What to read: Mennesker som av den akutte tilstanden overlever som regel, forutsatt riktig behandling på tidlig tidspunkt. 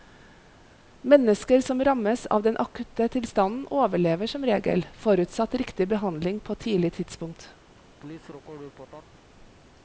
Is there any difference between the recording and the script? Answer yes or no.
yes